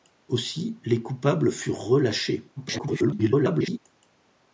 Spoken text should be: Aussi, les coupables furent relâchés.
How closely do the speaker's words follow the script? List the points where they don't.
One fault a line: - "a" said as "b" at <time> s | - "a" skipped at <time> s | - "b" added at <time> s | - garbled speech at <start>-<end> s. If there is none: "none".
- garbled speech at 2.6-3.8 s